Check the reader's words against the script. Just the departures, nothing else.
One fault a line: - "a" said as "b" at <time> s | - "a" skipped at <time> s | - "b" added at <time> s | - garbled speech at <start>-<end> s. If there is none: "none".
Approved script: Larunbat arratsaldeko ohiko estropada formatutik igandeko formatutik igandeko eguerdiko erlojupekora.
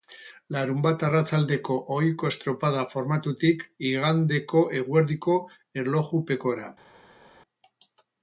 - "formatutik igandeko" skipped at 4.7 s